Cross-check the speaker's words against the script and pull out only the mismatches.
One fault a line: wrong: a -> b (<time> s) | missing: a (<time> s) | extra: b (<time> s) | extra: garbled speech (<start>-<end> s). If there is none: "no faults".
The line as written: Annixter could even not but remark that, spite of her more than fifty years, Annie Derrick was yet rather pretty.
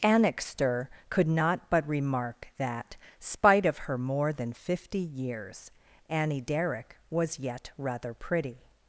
missing: even (1.3 s)